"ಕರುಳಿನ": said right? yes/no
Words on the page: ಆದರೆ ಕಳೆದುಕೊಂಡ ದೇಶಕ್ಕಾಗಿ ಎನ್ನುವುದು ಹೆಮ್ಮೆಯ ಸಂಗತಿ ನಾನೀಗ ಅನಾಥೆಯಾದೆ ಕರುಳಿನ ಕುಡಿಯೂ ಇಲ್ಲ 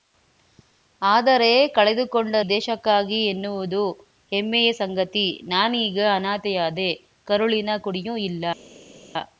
yes